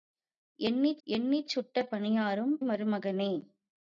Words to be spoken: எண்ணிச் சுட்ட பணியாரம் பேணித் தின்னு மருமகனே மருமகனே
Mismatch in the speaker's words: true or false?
true